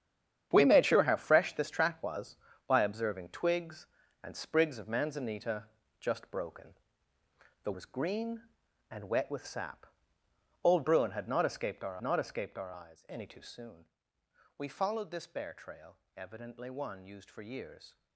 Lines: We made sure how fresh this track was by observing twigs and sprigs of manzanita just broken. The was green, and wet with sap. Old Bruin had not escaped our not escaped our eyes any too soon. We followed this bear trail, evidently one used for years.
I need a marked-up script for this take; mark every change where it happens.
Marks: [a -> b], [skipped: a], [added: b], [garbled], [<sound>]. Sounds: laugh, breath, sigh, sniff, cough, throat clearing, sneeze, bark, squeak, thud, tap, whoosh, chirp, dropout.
We made sure how fresh this track was by observing twigs and sprigs of manzanita just broken. The was green, and wet with sap. Old Bruin had not escaped our not escaped our eyes any too soon. We followed this bear trail, evidently one used for years.